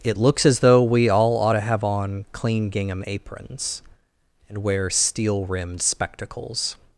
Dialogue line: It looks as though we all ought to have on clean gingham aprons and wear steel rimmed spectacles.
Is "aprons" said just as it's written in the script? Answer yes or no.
yes